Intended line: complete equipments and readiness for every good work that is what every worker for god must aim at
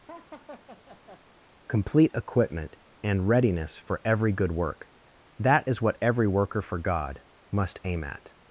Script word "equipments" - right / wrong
wrong